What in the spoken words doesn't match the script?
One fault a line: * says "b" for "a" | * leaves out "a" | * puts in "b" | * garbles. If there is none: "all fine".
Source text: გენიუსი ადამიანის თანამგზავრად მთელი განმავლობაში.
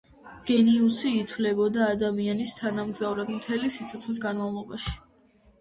* puts in "ითვლებოდა"
* puts in "სიცოცხლის"